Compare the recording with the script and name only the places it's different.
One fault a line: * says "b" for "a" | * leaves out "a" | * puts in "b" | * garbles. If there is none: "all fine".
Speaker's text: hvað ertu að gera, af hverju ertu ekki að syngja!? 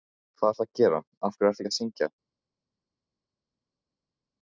all fine